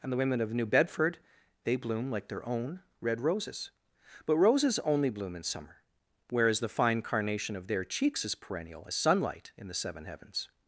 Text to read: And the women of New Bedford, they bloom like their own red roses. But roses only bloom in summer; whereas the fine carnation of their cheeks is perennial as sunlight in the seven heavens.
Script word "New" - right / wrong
right